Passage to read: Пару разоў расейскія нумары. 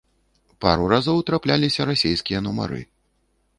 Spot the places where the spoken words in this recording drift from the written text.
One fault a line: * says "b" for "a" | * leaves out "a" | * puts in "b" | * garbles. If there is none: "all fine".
* puts in "трапляліся"